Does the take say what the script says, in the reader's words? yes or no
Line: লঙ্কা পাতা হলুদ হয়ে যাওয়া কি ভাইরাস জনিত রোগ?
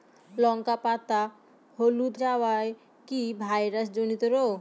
no